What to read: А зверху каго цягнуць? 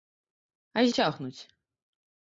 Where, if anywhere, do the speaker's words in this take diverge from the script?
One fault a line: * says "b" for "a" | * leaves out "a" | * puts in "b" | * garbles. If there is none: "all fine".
* leaves out "зверху каго"